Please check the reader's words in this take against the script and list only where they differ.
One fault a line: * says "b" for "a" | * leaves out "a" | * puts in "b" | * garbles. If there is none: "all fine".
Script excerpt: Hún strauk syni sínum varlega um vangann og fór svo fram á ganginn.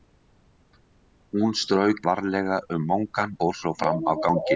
* leaves out "syni sínum"
* leaves out "og"